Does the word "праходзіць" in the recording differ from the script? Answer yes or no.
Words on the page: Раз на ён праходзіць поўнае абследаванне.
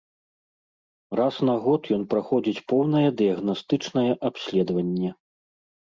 no